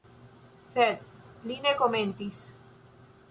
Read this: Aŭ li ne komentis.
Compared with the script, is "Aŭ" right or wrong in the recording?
wrong